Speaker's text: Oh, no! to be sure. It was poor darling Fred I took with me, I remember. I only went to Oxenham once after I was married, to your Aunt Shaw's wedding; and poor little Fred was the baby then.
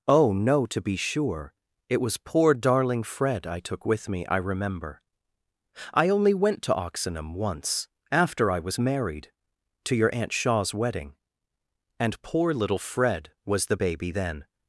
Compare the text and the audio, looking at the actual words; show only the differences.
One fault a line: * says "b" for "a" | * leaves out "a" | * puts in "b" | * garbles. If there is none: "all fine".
all fine